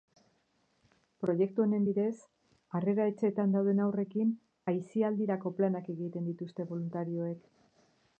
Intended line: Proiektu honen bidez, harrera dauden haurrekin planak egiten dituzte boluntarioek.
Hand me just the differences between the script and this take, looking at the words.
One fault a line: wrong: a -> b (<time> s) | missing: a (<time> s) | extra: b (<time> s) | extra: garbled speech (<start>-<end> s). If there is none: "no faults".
extra: etxeetan (3.1 s)
extra: aisialdirako (4.7 s)